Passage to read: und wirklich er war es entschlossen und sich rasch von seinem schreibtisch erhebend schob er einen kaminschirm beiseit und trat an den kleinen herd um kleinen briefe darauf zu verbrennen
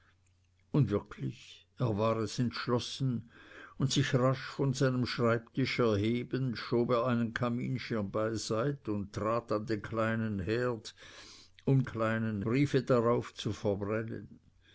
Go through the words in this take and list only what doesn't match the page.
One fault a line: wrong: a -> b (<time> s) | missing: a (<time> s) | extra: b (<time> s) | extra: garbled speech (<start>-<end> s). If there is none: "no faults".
no faults